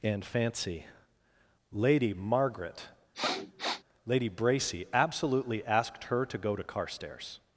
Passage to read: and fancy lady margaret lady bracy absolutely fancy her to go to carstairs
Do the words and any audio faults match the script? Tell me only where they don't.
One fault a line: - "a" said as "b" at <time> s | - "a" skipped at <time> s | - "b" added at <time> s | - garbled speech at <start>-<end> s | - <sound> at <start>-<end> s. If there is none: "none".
- sniff at 3.1-3.8 s
- "fancy" said as "asked" at 5.7 s